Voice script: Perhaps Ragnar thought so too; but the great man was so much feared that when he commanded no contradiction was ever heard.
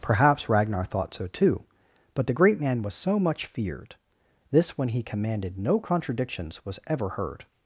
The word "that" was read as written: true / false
false